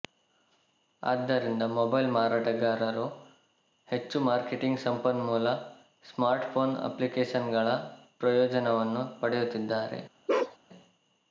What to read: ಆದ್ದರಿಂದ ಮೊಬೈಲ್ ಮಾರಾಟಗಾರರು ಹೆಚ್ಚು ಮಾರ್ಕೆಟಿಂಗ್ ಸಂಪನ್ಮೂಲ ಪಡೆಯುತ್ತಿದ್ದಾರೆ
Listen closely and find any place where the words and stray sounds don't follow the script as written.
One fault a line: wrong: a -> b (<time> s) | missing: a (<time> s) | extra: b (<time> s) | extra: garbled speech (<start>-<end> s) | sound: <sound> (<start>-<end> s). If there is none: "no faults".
extra: ಸ್ಮಾರ್ಟ್ಫೋನ್ ಅಪ್ಲಿಕೇಶನ್ಗಳ ಪ್ರಯೋಜನವನ್ನು (6.0 s)
sound: bark (10.3-10.6 s)